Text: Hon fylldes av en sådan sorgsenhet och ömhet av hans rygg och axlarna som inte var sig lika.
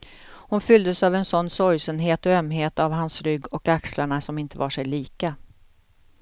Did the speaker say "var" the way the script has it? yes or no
yes